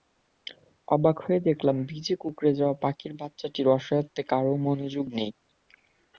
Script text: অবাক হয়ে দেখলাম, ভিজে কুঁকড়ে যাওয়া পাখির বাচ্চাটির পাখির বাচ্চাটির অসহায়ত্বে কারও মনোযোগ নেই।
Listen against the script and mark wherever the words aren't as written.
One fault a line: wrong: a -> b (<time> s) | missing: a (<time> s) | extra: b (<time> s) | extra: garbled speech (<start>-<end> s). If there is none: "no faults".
missing: পাখির বাচ্চাটির (3.7 s)